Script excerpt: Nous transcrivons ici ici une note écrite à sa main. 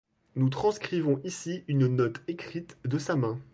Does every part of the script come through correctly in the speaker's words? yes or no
no